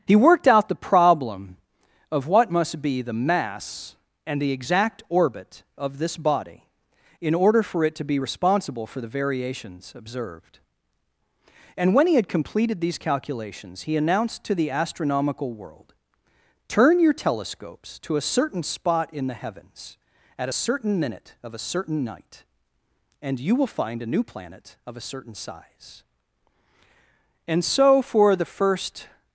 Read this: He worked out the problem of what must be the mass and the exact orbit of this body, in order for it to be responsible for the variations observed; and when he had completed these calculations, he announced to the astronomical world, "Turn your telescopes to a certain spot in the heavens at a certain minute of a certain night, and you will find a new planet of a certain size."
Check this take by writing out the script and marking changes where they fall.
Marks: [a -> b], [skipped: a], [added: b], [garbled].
He worked out the problem of what must be the mass and the exact orbit of this body, in order for it to be responsible for the variations observed; and when he had completed these calculations, he announced to the astronomical world, "Turn your telescopes to a certain spot in the heavens at a certain minute of a certain night, and you will find a new planet of a certain size." [added: And so for the first]